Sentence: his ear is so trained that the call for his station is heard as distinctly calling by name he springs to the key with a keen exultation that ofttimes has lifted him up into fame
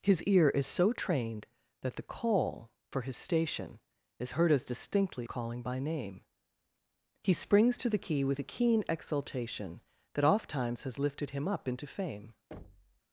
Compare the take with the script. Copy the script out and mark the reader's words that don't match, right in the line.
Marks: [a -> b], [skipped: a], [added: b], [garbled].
his ear is so trained that the call for his station is heard as distinctly calling by name he springs to the key with a keen exultation that ofttimes has lifted him up into fame